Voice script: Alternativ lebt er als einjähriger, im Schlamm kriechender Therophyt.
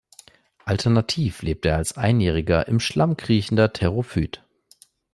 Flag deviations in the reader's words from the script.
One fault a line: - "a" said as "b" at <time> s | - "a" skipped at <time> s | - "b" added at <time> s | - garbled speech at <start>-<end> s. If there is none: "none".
none